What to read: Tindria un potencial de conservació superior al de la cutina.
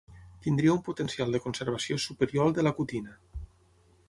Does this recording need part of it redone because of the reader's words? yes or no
no